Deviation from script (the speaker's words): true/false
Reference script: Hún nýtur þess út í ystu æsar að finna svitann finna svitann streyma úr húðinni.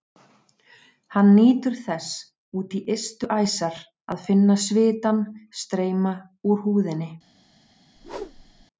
true